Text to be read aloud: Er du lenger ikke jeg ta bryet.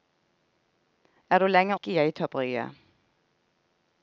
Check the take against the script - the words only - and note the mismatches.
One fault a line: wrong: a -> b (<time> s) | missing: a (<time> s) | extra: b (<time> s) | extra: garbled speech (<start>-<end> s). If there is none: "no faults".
no faults